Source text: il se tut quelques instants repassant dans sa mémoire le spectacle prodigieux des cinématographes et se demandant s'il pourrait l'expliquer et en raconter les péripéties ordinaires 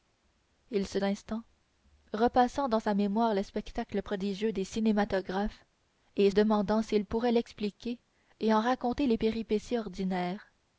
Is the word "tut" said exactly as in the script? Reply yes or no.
no